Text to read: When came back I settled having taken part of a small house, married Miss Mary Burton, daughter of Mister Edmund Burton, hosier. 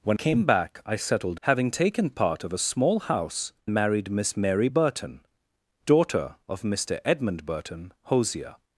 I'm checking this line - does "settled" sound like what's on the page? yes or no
yes